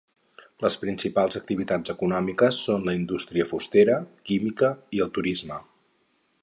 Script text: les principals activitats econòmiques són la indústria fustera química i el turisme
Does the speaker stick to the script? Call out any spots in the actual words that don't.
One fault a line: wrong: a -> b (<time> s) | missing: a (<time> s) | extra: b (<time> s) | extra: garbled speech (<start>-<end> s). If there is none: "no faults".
no faults